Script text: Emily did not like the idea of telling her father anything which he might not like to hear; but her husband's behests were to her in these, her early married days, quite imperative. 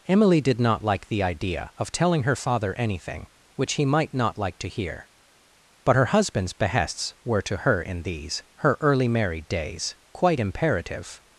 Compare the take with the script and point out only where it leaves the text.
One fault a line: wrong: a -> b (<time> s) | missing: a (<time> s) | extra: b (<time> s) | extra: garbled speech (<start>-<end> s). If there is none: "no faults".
no faults